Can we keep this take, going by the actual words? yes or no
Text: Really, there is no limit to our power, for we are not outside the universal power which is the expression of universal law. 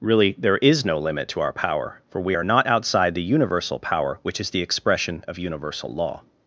yes